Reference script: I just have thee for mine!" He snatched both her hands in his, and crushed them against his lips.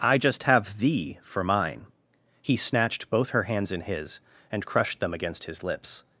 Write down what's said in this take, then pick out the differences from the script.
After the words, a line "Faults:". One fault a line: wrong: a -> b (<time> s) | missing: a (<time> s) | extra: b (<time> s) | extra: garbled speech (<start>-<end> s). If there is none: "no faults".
I just have thee for mine!" He snatched both her hands in his, and crushed them against his lips.
Faults:
no faults